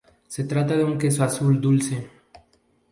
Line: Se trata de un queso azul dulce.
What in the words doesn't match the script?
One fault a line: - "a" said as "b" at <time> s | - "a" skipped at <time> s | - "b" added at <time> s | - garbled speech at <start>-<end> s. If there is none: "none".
none